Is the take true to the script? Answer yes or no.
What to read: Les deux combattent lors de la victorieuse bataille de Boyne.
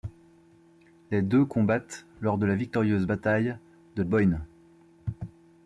yes